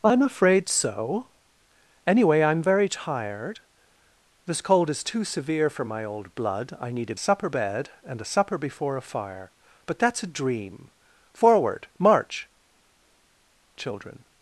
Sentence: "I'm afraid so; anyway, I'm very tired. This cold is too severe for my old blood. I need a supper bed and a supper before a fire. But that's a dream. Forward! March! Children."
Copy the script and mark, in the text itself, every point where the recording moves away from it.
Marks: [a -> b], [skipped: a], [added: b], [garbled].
"I'm afraid so; anyway, I'm very tired. This cold is too severe for my old blood. I need a supper bed and a supper before a fire. But that's a dream. Forward! March! Children."